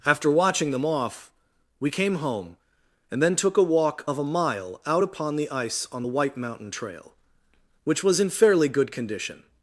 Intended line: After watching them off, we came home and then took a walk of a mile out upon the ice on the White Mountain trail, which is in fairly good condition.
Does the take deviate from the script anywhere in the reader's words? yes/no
yes